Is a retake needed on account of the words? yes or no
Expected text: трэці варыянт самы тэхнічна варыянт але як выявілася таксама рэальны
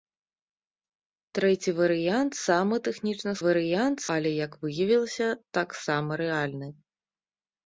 no